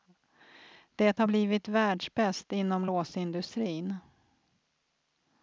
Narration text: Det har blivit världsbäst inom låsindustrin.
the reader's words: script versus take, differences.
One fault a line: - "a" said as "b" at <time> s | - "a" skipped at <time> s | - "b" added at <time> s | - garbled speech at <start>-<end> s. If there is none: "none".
none